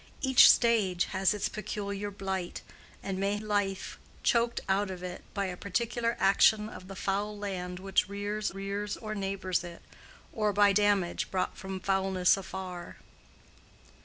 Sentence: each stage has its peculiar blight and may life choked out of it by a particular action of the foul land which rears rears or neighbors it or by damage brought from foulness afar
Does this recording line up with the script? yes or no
yes